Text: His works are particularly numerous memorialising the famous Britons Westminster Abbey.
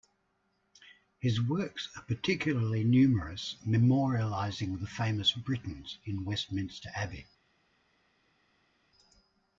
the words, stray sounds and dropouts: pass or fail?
fail